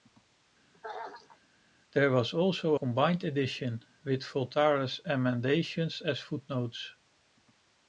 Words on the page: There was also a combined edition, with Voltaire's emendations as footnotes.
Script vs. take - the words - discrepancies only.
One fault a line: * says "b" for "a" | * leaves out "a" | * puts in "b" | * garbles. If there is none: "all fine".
* leaves out "a"